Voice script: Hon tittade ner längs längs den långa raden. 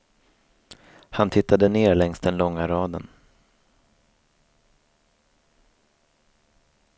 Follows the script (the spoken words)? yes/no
no